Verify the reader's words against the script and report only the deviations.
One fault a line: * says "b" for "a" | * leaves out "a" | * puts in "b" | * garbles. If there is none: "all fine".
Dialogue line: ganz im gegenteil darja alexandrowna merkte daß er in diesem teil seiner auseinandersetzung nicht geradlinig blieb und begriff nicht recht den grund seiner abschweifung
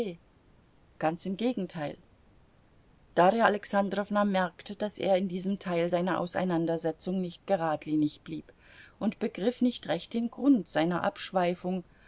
all fine